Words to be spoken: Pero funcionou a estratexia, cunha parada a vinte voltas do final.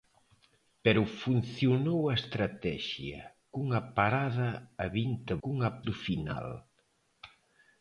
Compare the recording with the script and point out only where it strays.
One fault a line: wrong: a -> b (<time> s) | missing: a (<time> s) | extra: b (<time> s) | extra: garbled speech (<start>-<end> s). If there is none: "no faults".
wrong: voltas -> cunha (5.4 s)